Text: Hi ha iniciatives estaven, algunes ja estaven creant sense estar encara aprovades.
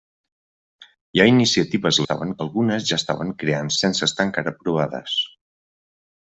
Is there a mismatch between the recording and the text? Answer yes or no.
no